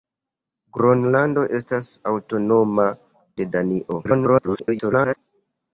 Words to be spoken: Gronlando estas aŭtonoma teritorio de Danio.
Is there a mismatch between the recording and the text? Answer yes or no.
yes